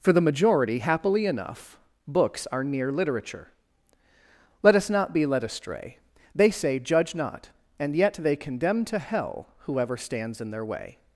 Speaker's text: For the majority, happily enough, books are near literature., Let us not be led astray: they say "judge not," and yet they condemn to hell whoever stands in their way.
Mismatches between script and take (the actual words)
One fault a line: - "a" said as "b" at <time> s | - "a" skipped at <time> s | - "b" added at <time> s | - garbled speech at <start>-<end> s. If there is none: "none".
none